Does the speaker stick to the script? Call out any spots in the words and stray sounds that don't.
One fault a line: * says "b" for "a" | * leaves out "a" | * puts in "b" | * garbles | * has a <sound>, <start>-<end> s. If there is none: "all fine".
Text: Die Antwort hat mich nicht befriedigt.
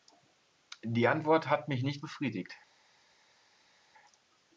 all fine